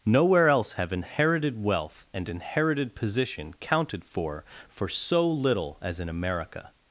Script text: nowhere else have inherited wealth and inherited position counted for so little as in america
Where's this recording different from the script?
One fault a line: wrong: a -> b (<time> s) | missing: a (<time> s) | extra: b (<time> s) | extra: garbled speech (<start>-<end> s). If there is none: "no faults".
extra: for (4.7 s)